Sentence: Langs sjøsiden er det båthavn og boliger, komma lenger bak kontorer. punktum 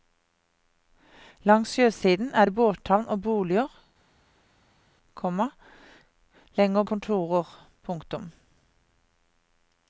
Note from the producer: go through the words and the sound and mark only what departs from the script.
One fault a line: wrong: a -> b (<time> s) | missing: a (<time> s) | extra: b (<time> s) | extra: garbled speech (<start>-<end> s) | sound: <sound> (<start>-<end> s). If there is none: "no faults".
missing: bak (6.8 s)